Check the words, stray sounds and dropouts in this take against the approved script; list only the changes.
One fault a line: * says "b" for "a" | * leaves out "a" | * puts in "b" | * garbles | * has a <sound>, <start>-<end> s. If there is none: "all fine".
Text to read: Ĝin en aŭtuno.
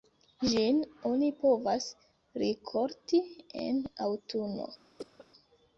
* puts in "oni povas rikolti"
* has a cough, 5.0-5.3 s